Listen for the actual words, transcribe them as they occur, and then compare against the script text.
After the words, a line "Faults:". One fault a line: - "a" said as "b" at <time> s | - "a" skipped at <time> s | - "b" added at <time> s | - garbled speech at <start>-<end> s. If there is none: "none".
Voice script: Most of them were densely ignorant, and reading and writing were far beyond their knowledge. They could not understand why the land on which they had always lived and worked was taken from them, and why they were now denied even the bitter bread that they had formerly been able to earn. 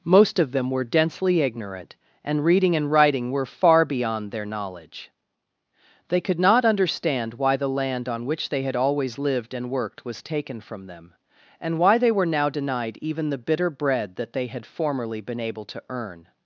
Most of them were densely ignorant, and reading and writing were far beyond their knowledge. They could not understand why the land on which they had always lived and worked was taken from them, and why they were now denied even the bitter bread that they had formerly been able to earn.
Faults:
none